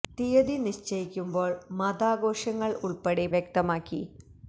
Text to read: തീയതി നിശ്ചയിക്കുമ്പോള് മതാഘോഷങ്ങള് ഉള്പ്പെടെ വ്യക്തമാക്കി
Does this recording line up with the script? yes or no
yes